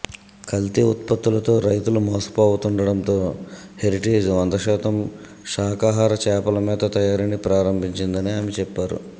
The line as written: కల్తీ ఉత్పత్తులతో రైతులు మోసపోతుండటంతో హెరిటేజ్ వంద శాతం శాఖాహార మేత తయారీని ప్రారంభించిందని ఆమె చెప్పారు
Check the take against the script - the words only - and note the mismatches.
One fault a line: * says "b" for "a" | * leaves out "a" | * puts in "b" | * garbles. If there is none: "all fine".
* puts in "చేపల"